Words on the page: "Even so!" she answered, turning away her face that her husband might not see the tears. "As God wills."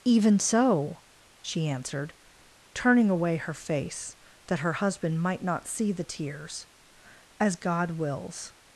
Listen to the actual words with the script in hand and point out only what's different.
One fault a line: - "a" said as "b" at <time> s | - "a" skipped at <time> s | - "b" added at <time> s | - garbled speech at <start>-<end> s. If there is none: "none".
none